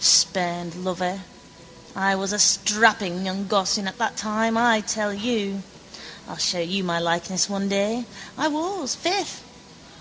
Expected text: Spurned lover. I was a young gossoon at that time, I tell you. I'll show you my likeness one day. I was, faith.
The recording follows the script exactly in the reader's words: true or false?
false